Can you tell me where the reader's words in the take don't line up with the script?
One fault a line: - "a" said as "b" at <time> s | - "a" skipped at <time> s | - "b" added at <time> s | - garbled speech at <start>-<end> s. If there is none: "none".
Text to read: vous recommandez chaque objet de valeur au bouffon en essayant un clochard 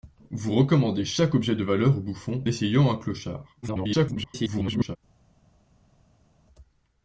- "en" skipped at 2.4 s
- garbled speech at 3.6-5.0 s